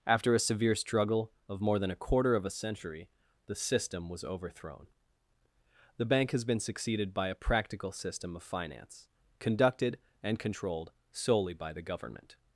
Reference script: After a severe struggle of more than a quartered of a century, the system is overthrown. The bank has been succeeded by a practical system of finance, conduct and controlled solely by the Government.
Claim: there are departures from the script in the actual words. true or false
true